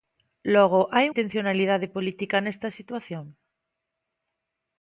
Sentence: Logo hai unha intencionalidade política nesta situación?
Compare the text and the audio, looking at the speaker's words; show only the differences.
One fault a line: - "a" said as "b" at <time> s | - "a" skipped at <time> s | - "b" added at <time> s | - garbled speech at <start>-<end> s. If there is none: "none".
- "unha" skipped at 1.1 s